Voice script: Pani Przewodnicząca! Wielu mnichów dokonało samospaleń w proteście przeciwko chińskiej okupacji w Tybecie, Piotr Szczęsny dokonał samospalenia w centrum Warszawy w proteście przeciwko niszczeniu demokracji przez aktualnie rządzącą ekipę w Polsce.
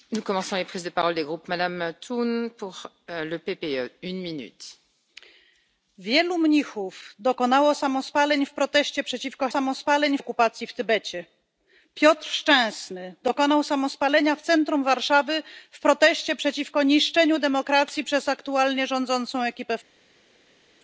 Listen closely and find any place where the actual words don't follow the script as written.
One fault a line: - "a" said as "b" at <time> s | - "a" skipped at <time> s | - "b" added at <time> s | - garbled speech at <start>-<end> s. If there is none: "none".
- "chińskiej" said as "samospaleń" at 9.5 s